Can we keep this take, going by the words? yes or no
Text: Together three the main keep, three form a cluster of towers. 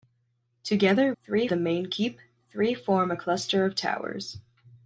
yes